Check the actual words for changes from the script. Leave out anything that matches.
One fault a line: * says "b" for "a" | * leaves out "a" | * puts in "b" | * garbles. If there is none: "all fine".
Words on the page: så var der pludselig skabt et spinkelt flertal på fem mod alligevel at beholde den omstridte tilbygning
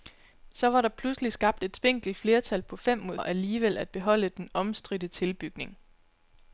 all fine